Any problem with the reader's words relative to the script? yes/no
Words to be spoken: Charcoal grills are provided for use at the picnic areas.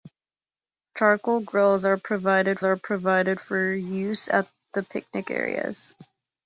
yes